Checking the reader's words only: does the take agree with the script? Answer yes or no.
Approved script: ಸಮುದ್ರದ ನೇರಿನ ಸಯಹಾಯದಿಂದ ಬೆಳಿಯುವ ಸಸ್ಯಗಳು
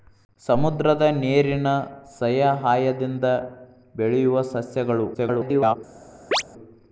no